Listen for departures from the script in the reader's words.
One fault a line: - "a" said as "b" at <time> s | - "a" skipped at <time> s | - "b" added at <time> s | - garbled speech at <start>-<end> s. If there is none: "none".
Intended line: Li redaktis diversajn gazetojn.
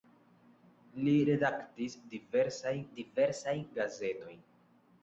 - "diversajn" added at 3.0 s